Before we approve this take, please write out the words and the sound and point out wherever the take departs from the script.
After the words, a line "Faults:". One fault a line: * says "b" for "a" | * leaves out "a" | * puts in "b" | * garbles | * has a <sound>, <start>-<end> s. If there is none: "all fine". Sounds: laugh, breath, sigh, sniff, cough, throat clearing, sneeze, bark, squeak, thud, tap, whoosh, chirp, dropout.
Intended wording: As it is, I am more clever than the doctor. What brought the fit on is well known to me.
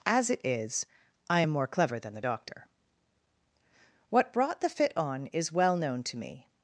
As it is, I am more clever than the doctor. What brought the fit on is well known to me.
Faults:
all fine